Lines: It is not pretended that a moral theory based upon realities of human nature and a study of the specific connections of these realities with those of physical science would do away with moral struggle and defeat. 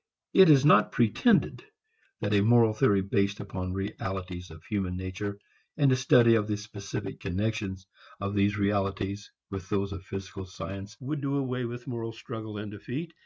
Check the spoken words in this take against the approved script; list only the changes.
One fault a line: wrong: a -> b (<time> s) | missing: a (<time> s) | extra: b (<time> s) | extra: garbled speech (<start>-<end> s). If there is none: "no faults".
no faults